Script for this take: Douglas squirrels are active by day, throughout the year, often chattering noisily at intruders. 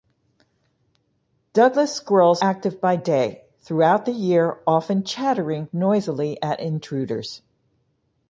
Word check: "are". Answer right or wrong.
wrong